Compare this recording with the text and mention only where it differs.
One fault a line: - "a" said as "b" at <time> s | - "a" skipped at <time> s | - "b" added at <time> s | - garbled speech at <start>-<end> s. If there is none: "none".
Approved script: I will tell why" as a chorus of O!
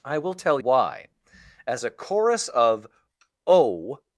none